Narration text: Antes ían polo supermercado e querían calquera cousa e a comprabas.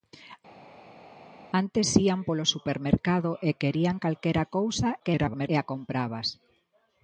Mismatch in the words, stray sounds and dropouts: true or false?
true